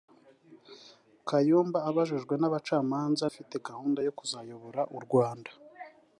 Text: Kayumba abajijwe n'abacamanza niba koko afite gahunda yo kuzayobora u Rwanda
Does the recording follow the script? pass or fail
fail